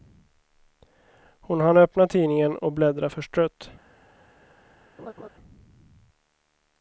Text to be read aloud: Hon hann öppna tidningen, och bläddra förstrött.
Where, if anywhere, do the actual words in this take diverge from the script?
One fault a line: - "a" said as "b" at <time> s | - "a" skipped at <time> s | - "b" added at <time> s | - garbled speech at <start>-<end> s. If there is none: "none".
none